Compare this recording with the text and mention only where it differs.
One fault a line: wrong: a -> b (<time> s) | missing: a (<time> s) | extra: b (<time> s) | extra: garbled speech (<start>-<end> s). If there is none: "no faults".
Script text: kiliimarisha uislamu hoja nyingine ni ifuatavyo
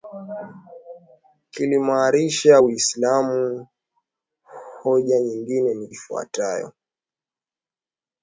no faults